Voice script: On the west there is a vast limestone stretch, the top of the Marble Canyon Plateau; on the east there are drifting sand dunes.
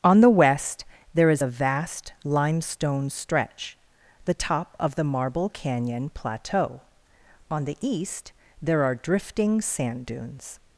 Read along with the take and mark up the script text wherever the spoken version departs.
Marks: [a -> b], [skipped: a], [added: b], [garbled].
On the west there is a vast limestone stretch, the top of the Marble Canyon Plateau; on the east there are drifting sand dunes.